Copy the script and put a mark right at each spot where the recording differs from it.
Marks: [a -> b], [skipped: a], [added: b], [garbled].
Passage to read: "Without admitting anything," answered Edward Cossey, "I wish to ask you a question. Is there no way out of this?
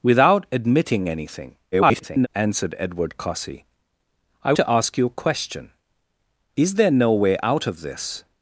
"Without admitting anything," [garbled] answered Edward Cossey, "I [skipped: wish] to ask you a question. Is there no way out of this?